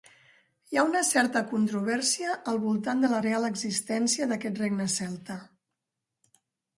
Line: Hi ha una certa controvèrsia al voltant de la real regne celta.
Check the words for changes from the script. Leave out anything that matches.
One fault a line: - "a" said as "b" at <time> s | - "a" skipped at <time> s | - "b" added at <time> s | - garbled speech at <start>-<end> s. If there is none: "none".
- "existència d'aquest" added at 3.5 s